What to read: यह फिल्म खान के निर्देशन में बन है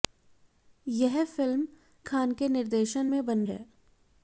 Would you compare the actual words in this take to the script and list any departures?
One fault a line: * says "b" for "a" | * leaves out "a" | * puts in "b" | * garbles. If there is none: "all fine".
all fine